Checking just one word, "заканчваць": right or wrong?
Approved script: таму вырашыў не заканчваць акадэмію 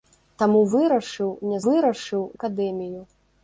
wrong